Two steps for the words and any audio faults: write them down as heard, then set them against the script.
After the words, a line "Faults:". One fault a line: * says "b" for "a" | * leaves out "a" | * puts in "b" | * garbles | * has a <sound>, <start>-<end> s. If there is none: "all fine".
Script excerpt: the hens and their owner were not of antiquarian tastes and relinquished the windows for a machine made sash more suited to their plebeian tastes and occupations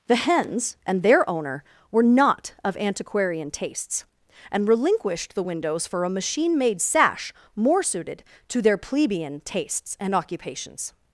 the hens and their owner were not of antiquarian tastes and relinquished the windows for a machine made sash more suited to their plebeian tastes and occupations
Faults:
all fine